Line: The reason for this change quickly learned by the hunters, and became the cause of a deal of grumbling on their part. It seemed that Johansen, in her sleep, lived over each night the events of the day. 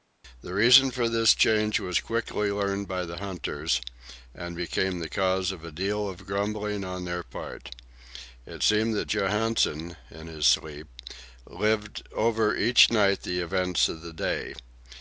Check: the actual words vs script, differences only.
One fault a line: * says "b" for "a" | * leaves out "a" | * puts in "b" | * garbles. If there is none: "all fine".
* puts in "was"
* says "his" for "her"